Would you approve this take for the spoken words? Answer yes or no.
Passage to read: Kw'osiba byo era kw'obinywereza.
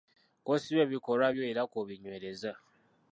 no